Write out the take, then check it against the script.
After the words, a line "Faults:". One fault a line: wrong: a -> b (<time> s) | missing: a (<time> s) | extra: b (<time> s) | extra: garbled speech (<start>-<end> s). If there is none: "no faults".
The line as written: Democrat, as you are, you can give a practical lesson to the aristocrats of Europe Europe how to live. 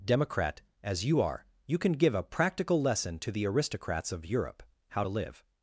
Democrat, as you are, you can give a practical lesson to the aristocrats of Europe how to live.
Faults:
missing: Europe (4.6 s)